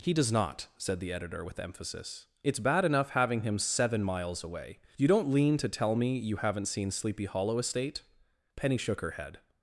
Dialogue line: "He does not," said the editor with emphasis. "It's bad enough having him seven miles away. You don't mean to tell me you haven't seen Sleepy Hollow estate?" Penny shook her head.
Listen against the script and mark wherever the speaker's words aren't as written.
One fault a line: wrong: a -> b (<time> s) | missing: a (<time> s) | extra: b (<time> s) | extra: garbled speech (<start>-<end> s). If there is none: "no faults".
wrong: mean -> lean (5.3 s)